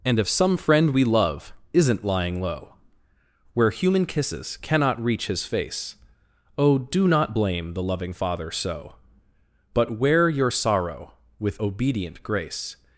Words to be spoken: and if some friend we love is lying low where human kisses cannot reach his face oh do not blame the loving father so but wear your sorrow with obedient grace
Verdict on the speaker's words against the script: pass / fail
fail